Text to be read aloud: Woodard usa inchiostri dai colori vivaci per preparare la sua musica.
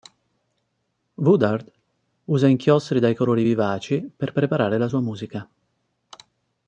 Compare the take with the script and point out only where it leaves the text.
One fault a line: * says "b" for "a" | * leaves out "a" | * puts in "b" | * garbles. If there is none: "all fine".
all fine